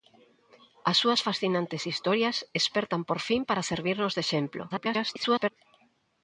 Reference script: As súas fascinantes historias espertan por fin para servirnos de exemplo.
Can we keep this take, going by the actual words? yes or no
no